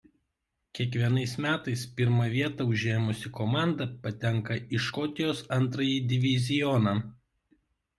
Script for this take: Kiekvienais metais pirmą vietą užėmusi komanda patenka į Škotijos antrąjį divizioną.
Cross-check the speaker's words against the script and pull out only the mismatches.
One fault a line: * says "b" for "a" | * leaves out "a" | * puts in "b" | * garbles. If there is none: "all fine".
all fine